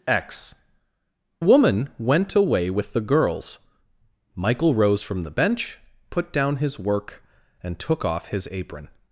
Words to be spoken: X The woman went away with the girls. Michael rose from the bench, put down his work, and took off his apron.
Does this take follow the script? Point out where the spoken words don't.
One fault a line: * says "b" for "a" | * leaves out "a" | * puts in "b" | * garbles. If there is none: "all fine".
* leaves out "The"